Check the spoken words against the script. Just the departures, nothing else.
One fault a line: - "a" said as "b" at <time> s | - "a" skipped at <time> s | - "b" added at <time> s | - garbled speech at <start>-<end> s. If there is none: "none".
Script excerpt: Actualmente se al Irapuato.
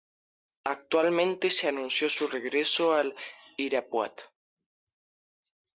- "anunció su regreso" added at 1.7 s